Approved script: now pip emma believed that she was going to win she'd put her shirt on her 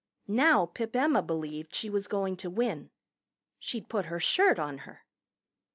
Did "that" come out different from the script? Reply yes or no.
yes